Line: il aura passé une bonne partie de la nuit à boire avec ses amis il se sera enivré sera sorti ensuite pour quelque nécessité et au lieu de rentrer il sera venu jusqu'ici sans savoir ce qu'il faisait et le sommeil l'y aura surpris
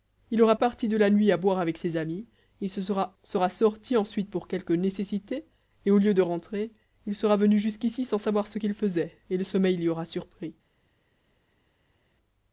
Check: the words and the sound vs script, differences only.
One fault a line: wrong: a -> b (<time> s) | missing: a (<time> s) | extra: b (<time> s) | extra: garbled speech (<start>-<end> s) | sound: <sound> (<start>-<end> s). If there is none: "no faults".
missing: passé une bonne (0.6 s)
missing: enivré (3.2 s)